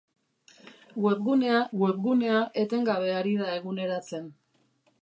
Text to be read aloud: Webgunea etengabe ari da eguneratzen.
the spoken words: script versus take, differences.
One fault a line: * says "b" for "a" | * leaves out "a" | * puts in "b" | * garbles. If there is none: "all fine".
* puts in "webgunea"